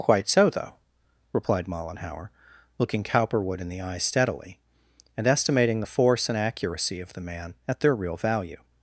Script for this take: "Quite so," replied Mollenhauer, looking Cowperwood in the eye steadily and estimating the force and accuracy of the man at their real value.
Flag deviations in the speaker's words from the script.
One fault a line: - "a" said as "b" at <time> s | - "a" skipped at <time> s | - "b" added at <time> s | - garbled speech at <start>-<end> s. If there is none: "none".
- "though" added at 0.5 s